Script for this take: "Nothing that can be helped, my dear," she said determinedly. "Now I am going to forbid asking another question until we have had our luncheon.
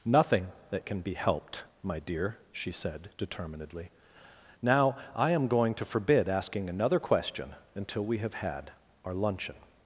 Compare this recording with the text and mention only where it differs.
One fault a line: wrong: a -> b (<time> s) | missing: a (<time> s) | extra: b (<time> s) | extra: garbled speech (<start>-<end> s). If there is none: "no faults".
no faults